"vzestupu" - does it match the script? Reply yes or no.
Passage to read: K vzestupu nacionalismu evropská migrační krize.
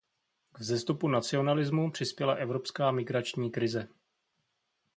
yes